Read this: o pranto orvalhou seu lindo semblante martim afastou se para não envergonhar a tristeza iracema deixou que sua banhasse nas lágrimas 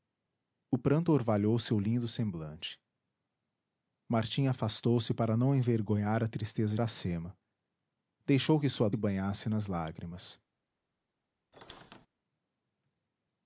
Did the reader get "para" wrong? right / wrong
right